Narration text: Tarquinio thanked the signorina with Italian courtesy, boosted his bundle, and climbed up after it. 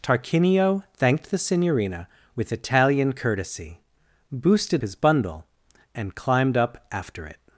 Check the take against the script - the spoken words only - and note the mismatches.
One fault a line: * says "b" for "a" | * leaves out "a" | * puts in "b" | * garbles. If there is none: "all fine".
all fine